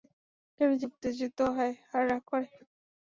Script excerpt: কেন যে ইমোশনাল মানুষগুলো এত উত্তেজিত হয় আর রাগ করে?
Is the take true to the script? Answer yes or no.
no